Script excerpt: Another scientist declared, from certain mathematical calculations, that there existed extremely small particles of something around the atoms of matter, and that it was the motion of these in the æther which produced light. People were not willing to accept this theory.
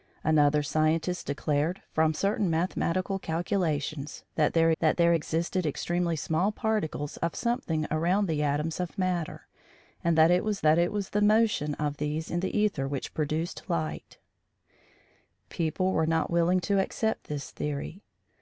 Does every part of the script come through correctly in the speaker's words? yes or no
no